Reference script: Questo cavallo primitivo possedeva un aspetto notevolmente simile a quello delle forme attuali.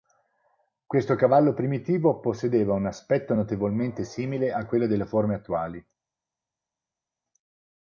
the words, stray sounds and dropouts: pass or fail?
pass